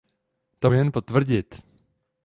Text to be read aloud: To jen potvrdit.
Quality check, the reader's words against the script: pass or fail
pass